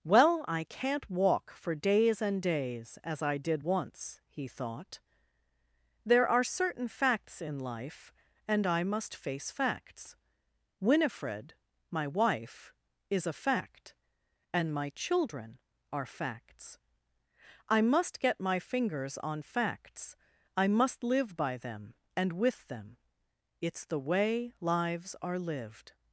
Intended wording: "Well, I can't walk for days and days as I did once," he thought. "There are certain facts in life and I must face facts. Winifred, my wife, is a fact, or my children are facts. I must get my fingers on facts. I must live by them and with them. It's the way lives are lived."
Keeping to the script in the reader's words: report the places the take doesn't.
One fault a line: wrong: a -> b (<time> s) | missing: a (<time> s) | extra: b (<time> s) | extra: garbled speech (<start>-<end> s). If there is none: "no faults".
wrong: or -> and (14.5 s)